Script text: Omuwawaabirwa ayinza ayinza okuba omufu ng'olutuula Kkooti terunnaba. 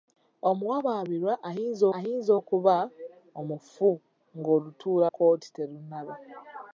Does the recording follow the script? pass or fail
pass